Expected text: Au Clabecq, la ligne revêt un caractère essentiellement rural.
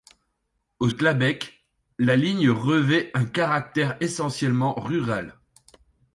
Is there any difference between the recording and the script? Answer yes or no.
no